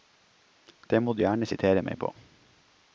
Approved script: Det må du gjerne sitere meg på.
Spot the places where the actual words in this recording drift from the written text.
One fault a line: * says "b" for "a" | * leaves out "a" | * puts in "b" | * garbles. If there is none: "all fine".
all fine